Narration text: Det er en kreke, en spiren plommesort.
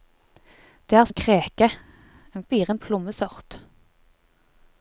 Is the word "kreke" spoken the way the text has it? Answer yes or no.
yes